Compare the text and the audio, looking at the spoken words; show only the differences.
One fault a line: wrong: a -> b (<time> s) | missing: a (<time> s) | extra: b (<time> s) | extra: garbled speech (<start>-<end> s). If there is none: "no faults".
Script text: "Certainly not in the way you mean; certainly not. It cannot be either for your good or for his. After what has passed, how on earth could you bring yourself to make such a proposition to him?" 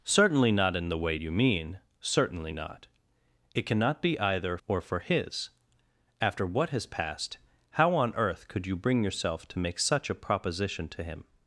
missing: for your good (4.6 s)